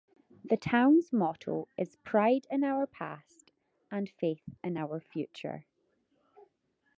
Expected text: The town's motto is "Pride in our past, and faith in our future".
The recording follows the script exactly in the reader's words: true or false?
true